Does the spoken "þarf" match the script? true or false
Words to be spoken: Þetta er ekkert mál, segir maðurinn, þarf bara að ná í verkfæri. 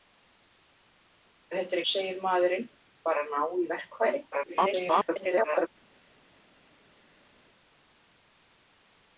false